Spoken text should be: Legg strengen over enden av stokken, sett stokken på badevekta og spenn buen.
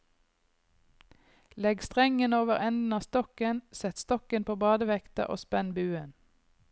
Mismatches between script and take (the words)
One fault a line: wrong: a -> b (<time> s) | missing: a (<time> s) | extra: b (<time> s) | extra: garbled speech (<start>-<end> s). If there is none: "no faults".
no faults